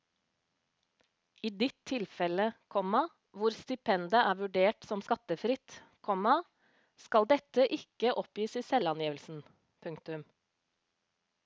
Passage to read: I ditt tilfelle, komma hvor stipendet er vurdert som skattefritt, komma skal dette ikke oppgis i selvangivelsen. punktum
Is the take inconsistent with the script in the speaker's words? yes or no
no